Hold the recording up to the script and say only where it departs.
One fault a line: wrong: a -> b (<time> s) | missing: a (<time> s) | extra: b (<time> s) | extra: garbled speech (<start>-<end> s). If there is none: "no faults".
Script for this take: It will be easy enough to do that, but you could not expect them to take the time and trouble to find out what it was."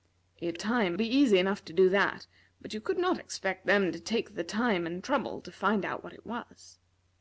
wrong: will -> time (0.5 s)